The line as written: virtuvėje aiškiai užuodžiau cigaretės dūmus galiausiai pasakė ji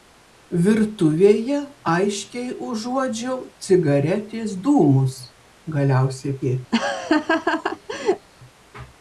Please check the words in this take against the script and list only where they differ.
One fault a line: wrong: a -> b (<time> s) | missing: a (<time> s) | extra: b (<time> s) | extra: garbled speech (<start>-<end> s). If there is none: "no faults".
missing: pasakė (6.4 s)